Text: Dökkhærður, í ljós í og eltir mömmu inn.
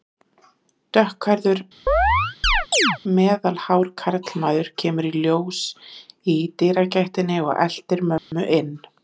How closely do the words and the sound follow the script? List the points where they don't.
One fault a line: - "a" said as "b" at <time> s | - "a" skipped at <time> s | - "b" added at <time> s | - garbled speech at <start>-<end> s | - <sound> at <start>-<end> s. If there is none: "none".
- chirp at 1.9-3.0 s
- "meðalhár karlmaður kemur" added at 3.2 s
- "dyragættinni" added at 6.6 s
- dropout at 8.2-8.3 s